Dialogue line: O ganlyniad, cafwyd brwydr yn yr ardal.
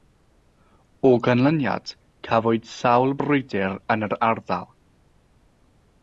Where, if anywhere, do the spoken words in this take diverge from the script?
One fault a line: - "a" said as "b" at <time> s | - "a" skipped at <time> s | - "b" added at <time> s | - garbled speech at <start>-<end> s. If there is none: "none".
- "sawl" added at 2.7 s